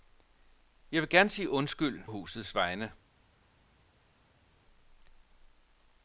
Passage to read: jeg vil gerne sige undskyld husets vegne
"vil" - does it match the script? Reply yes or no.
yes